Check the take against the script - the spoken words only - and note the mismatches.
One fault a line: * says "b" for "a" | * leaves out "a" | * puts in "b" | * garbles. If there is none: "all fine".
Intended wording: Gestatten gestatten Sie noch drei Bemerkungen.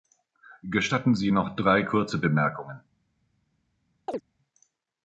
* leaves out "gestatten"
* puts in "kurze"